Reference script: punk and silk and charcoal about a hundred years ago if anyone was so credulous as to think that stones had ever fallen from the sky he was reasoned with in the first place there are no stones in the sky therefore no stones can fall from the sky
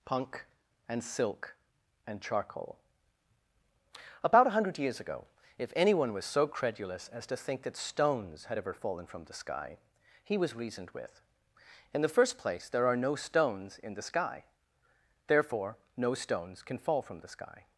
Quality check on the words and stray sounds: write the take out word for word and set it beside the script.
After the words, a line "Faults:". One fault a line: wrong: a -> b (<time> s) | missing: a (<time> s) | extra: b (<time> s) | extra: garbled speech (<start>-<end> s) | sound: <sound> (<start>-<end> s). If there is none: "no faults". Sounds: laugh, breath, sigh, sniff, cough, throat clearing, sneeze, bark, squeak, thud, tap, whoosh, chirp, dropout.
punk and silk and charcoal about a hundred years ago if anyone was so credulous as to think that stones had ever fallen from the sky he was reasoned with in the first place there are no stones in the sky therefore no stones can fall from the sky
Faults:
no faults